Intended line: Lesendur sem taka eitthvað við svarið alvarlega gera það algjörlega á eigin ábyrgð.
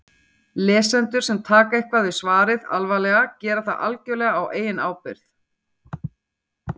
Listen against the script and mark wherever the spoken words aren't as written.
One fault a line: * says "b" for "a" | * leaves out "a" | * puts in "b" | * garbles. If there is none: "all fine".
all fine